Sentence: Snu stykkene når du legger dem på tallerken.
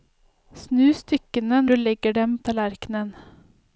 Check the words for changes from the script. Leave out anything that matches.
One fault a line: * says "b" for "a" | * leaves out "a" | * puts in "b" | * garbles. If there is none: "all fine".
* leaves out "når"
* leaves out "på"